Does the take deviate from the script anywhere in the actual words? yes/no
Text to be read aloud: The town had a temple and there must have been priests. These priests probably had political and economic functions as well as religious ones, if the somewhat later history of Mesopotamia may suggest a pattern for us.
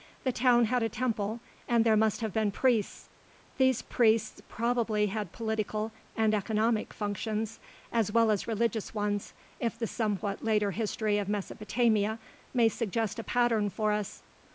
no